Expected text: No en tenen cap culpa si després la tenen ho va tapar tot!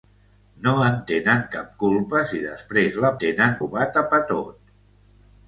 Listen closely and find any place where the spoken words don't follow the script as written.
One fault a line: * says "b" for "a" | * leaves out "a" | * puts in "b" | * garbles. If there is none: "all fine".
all fine